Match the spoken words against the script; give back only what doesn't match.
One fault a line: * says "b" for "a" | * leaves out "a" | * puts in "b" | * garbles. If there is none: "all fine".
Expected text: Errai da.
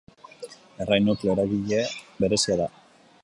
* puts in "nukleo eragile berezia"